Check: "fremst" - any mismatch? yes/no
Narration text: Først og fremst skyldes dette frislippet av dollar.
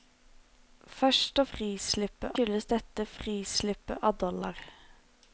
yes